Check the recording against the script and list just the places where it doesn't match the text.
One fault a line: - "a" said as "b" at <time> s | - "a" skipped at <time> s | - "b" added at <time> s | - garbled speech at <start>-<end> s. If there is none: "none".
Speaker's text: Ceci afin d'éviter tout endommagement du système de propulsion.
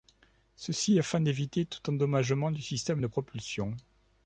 none